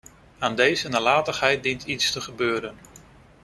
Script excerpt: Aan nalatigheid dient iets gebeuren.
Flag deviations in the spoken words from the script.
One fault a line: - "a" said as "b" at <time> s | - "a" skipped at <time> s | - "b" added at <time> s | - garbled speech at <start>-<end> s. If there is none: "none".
- "deze" added at 0.6 s
- "te" added at 2.1 s